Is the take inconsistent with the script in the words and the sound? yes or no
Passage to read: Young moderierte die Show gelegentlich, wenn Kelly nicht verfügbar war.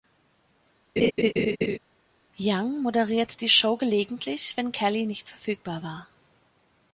yes